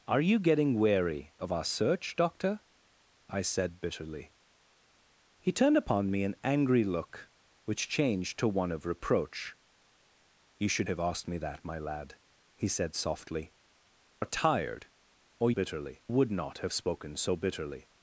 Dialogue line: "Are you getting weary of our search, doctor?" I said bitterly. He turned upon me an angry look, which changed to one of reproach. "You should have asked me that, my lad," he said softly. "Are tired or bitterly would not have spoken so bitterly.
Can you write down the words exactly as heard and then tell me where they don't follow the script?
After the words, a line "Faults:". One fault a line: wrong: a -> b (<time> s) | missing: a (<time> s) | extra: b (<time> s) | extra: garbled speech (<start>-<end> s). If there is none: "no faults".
"Are you getting weary of our search, doctor?" I said bitterly. He turned upon me an angry look, which changed to one of reproach. "You should have asked me that, my lad," he said softly. "Are tired or bitterly would not have spoken so bitterly.
Faults:
no faults